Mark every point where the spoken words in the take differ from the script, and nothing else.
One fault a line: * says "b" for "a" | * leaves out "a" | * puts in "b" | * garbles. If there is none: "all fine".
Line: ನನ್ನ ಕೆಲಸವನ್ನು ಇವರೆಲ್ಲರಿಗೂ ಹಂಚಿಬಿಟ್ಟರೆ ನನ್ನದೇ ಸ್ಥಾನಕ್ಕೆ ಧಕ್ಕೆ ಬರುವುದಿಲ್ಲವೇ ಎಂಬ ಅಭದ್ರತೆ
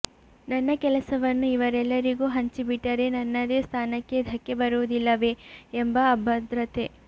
all fine